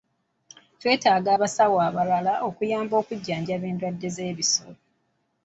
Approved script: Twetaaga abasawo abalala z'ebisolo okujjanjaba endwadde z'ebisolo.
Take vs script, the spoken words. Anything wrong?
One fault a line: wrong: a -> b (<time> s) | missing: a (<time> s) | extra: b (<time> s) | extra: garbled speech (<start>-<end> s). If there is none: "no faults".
wrong: z'ebisolo -> okuyamba (2.5 s)